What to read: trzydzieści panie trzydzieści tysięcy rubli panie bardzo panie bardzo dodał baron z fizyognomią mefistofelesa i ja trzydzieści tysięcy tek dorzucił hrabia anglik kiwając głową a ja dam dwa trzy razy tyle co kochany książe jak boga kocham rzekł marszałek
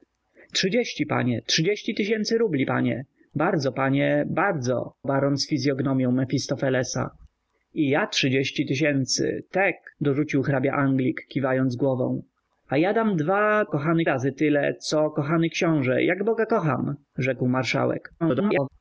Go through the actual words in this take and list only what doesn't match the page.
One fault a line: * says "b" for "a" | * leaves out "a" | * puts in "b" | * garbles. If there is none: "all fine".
* leaves out "dodał"
* says "kochany" for "trzy"
* garbles